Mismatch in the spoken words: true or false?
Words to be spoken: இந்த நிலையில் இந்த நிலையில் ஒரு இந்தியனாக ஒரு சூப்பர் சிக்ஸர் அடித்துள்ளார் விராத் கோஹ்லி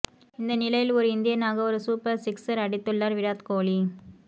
true